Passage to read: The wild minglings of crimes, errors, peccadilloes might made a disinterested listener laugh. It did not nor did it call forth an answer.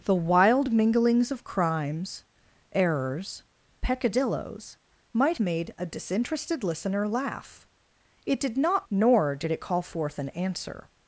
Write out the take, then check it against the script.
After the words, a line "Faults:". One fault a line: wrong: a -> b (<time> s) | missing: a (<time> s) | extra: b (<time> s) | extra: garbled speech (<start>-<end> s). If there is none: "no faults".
The wild minglings of crimes, errors, peccadilloes might made a disinterested listener laugh. It did not nor did it call forth an answer.
Faults:
no faults